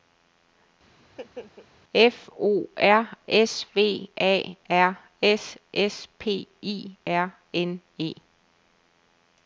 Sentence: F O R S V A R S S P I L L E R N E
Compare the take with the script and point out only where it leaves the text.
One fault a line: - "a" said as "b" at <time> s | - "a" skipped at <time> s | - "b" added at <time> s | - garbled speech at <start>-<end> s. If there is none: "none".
- "L L E" skipped at 7.0 s